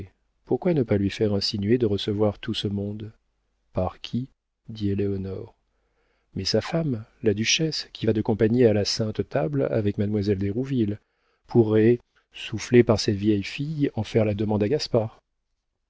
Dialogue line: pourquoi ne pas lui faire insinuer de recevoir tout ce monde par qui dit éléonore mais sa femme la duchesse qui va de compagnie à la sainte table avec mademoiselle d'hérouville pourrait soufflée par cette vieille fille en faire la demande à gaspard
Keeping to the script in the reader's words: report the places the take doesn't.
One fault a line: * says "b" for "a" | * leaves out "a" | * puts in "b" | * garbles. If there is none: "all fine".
all fine